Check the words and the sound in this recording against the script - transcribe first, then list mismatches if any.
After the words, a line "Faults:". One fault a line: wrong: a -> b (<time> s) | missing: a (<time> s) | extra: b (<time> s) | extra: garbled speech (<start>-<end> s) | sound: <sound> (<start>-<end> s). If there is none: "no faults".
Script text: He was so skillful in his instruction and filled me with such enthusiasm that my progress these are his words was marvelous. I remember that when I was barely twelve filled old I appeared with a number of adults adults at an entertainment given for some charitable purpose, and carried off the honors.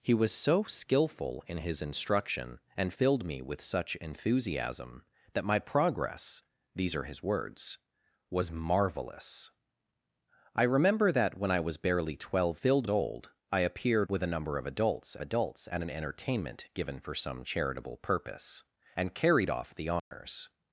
He was so skillful in his instruction and filled me with such enthusiasm that my progress these are his words was marvelous. I remember that when I was barely twelve filled old I appeared with a number of adults adults at an entertainment given for some charitable purpose, and carried off the honors.
Faults:
sound: dropout (20.0-20.1 s)